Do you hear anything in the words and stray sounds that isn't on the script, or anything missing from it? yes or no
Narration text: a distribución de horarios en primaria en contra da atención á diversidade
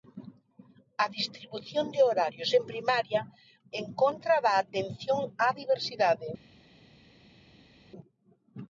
no